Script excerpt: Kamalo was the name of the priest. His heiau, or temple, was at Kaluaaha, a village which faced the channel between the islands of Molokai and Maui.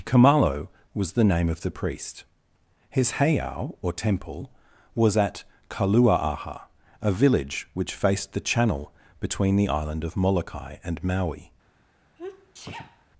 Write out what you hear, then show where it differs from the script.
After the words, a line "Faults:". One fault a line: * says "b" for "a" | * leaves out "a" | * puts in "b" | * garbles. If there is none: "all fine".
Kamalo was the name of the priest. His heiau, or temple, was at Kaluaaha, a village which faced the channel between the island of Molokai and Maui.
Faults:
* says "island" for "islands"